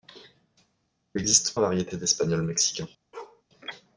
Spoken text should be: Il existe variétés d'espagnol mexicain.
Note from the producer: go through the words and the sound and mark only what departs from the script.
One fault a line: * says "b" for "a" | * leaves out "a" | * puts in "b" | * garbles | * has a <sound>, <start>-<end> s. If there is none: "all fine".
* has a bark, 3.1-3.4 s